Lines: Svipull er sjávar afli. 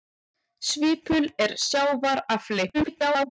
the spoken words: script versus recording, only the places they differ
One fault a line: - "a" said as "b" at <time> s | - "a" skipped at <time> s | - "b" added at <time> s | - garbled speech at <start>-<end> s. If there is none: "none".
- garbled speech at 2.7-3.3 s